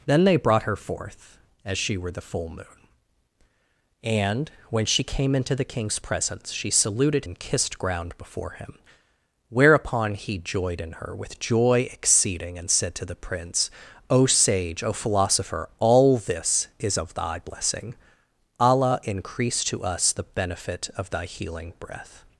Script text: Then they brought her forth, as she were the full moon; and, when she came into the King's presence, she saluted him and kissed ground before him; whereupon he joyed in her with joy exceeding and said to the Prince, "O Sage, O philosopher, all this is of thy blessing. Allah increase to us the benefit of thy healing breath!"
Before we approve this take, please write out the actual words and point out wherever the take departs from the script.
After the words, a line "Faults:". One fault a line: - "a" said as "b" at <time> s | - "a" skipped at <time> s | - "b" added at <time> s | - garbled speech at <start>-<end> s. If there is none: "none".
Then they brought her forth, as she were the full moon; and, when she came into the King's presence, she saluted and kissed ground before him; whereupon he joyed in her with joy exceeding and said to the Prince, "O Sage, O philosopher, all this is of thy blessing. Allah increase to us the benefit of thy healing breath!"
Faults:
- "him" skipped at 7.2 s